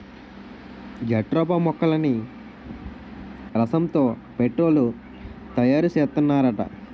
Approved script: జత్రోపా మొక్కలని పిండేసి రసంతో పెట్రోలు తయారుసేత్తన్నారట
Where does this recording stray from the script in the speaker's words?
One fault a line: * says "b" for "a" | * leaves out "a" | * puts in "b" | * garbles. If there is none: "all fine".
* leaves out "పిండేసి"